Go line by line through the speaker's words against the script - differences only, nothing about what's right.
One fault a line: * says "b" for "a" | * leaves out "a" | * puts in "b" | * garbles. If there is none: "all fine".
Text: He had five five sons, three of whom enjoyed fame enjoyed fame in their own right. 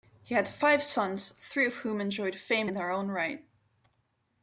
* leaves out "five"
* leaves out "enjoyed fame"